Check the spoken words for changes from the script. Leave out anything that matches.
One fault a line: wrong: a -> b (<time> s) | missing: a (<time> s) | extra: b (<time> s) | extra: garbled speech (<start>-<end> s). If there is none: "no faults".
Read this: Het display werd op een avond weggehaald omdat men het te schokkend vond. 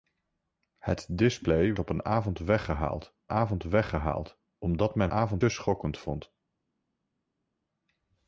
missing: werd (1.8 s)
extra: avond weggehaald (3.3 s)
wrong: het -> avond (5.1 s)